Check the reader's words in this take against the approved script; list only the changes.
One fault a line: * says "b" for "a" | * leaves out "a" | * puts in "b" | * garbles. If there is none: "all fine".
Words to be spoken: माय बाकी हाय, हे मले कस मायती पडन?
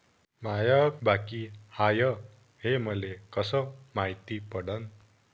all fine